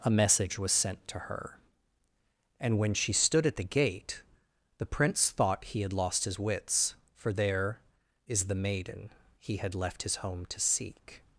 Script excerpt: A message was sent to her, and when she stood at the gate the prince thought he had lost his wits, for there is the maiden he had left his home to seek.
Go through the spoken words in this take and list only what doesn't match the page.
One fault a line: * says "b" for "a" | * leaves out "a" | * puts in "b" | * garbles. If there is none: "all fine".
all fine